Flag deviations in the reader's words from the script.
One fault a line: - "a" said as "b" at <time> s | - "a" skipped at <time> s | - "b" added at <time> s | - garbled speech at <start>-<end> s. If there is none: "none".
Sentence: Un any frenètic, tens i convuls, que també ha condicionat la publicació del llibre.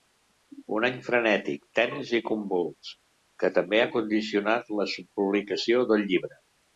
none